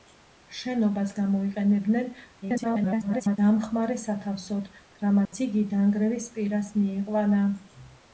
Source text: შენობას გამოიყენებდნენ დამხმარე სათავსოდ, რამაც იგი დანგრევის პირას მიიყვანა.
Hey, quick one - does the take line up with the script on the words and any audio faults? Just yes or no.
no